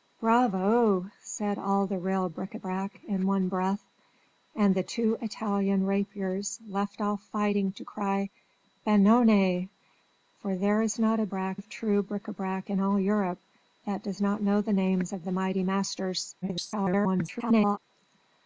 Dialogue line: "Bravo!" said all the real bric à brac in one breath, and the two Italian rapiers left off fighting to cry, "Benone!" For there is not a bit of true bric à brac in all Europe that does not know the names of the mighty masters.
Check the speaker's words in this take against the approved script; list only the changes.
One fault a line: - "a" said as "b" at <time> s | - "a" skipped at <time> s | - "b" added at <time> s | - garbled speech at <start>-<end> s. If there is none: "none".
- "bit" said as "brac" at 11.3 s
- garbled speech at 16.4-17.8 s